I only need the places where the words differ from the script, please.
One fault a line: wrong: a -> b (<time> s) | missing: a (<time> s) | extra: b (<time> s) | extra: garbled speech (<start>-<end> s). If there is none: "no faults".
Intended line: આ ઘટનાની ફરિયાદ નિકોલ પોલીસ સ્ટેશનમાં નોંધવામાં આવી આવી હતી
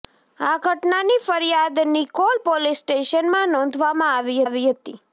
no faults